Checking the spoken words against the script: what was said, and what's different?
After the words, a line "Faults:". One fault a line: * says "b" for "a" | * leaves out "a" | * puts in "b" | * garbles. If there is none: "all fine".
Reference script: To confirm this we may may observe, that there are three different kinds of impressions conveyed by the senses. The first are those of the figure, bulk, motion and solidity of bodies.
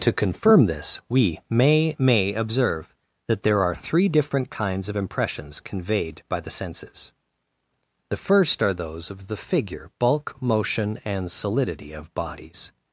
To confirm this we may may observe, that there are three different kinds of impressions conveyed by the senses. The first are those of the figure, bulk, motion and solidity of bodies.
Faults:
all fine